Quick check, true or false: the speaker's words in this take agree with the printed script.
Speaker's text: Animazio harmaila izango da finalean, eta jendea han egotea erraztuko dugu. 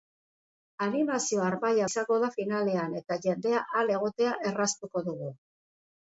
true